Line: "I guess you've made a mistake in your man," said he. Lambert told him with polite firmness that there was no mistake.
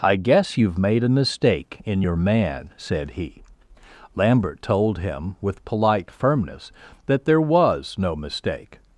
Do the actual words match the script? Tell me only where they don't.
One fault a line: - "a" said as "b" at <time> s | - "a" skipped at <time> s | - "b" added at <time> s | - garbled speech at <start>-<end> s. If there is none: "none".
none